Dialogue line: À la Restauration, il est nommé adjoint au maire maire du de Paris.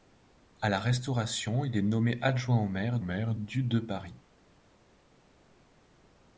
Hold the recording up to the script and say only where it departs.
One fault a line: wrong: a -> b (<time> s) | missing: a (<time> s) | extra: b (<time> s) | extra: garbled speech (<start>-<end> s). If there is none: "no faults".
no faults